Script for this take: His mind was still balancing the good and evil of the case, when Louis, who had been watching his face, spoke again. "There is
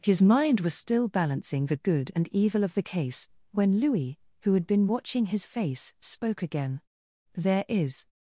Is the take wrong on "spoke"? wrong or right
right